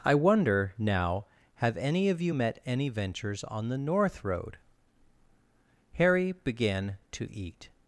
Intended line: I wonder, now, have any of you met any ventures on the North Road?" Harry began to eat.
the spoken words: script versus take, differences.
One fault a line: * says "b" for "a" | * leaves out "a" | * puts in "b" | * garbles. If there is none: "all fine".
all fine